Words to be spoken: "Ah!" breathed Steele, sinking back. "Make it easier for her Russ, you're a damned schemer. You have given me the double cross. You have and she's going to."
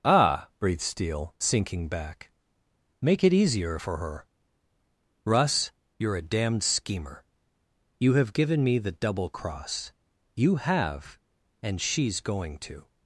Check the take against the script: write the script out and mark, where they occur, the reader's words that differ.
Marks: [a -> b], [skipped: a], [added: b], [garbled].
"Ah!" breathed Steele, sinking back. "Make it easier for her Russ, you're a damned schemer. You have given me the double cross. You have and she's going to."